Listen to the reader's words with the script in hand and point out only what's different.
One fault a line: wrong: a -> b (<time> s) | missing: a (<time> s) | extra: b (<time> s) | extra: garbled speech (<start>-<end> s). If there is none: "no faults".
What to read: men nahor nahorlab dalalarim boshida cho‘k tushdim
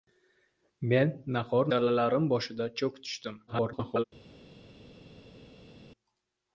missing: nahorlab (1.7 s)
extra: garbled speech (3.5-4.0 s)